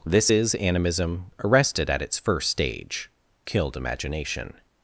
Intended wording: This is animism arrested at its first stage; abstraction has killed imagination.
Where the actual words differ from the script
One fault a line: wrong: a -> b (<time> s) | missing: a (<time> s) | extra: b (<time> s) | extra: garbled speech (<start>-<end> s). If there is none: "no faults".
missing: abstraction has (3.1 s)